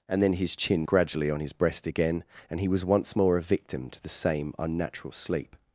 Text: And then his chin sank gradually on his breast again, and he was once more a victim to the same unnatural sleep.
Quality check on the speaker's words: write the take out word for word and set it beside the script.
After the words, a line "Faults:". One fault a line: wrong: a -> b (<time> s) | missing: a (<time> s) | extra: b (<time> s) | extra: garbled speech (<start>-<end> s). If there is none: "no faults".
And then his chin gradually on his breast again, and he was once more a victim to the same unnatural sleep.
Faults:
missing: sank (0.9 s)